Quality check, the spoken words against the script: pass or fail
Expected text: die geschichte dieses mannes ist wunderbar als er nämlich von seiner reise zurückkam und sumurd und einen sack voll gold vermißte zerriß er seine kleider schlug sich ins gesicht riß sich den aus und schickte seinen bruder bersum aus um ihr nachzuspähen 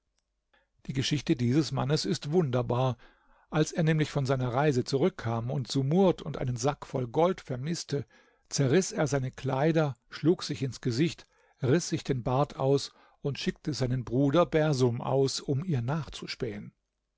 fail